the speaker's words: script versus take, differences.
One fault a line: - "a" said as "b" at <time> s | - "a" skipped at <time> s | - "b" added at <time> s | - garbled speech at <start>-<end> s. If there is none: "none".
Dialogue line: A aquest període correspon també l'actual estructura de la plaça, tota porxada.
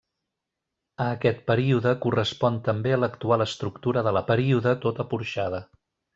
- "plaça" said as "període" at 4.3 s